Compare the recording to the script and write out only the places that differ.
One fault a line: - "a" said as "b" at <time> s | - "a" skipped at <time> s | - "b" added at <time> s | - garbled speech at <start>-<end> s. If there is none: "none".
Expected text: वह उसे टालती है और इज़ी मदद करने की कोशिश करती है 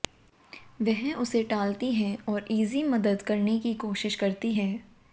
none